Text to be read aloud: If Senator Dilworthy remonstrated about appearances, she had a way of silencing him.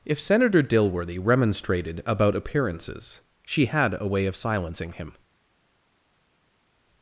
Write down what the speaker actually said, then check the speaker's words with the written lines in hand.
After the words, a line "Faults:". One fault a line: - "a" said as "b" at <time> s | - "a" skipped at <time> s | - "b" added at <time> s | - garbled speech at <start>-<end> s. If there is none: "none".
If Senator Dilworthy remonstrated about appearances, she had a way of silencing him.
Faults:
none